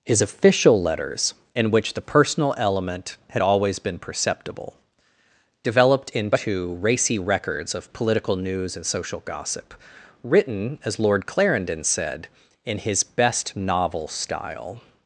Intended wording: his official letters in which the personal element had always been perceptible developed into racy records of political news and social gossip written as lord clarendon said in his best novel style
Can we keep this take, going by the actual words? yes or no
yes